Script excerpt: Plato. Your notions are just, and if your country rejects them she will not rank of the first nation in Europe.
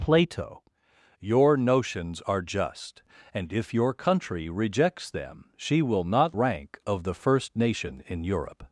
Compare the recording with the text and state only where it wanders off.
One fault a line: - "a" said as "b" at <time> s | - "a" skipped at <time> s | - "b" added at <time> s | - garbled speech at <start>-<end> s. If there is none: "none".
none